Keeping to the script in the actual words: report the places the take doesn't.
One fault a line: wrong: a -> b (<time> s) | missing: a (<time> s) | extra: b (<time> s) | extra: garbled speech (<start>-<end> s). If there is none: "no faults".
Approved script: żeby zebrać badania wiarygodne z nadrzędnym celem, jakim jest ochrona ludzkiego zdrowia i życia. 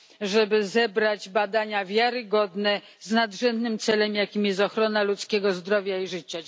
no faults